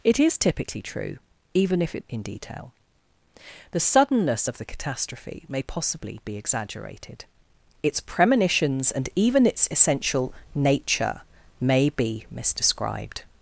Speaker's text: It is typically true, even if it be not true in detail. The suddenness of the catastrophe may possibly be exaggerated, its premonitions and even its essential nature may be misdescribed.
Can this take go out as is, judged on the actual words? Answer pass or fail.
fail